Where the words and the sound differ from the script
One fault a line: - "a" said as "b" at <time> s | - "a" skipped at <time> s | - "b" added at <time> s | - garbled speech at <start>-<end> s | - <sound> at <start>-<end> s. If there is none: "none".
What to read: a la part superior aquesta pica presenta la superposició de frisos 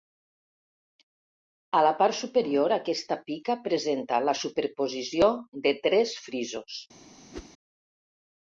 - "tres" added at 5.9 s
- whoosh at 7.3-7.5 s